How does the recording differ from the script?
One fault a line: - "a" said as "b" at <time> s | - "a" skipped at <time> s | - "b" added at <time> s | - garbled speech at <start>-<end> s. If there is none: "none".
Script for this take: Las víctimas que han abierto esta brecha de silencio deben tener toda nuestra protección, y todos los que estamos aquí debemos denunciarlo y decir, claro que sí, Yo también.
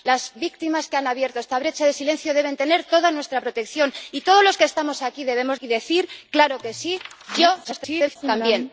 - "denunciarlo" skipped at 5.6 s
- garbled speech at 7.6-8.2 s